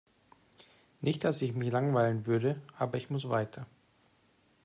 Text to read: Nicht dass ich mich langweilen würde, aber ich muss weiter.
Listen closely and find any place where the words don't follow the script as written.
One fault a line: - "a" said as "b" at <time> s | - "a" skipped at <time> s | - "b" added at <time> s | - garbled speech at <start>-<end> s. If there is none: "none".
none